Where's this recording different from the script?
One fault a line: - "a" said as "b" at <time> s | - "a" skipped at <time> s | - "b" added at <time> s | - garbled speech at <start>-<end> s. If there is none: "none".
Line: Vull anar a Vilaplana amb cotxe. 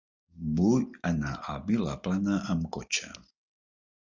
none